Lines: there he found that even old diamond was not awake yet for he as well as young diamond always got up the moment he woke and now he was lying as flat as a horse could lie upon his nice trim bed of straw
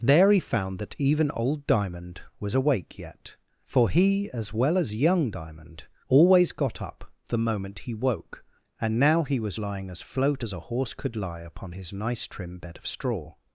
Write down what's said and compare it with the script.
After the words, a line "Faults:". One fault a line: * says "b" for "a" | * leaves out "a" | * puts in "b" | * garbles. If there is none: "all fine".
there he found that even old diamond was awake yet for he as well as young diamond always got up the moment he woke and now he was lying as float as a horse could lie upon his nice trim bed of straw
Faults:
* leaves out "not"
* says "float" for "flat"